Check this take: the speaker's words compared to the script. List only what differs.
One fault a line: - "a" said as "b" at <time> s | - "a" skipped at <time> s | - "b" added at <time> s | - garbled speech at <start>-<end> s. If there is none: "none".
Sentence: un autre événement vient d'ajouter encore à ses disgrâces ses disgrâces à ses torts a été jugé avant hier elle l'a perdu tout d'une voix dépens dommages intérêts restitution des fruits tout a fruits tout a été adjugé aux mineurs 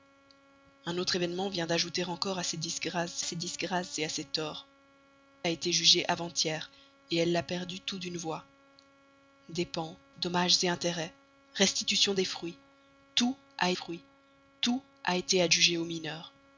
none